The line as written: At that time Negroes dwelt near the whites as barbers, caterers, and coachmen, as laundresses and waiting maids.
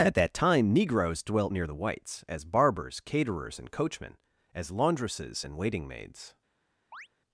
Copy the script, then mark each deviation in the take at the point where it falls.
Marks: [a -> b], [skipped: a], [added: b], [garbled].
At that time Negroes dwelt near the whites as barbers, caterers, and coachmen, as laundresses and waiting maids.